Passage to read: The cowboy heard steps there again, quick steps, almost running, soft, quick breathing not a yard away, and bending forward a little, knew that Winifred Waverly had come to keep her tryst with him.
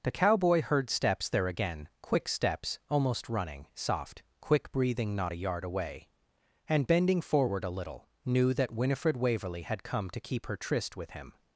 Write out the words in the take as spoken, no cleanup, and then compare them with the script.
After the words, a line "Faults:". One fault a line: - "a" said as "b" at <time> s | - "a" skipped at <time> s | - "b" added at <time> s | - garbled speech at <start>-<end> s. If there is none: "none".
The cowboy heard steps there again, quick steps, almost running, soft, quick breathing not a yard away, and bending forward a little, knew that Winifred Waverly had come to keep her tryst with him.
Faults:
none